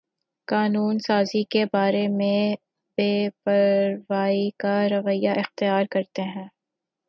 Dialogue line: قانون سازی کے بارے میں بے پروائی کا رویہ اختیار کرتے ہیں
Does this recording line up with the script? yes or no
yes